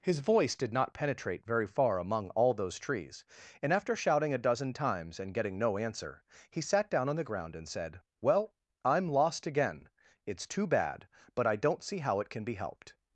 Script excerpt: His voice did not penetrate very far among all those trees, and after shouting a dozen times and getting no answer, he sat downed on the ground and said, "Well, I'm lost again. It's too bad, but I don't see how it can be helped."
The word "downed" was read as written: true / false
false